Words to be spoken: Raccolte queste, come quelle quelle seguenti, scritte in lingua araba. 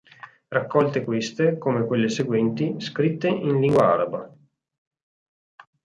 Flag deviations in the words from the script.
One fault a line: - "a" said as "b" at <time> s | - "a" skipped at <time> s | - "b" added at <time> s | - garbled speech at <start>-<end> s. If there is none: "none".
- "quelle" skipped at 2.1 s